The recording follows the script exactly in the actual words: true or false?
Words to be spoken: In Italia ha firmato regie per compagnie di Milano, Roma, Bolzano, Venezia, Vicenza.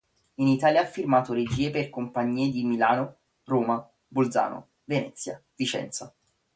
true